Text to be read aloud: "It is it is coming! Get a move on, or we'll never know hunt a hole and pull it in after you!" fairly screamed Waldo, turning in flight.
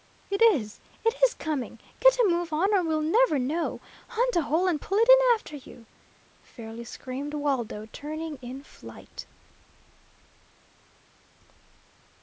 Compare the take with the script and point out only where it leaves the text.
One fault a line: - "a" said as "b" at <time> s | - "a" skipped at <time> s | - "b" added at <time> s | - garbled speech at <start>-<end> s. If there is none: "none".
none